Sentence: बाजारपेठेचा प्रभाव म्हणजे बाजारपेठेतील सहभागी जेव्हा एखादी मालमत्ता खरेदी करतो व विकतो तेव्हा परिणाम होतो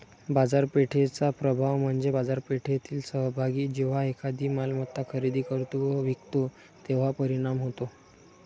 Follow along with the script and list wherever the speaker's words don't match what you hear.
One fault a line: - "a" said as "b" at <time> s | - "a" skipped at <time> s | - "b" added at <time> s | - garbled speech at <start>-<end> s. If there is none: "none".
none